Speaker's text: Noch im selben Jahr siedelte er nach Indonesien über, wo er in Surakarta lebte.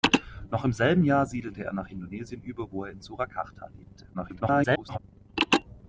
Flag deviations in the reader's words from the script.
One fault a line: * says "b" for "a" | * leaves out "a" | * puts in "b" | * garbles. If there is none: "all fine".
* garbles